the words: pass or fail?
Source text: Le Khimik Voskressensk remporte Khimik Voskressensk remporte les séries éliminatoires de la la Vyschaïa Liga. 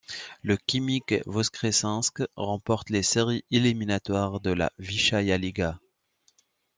fail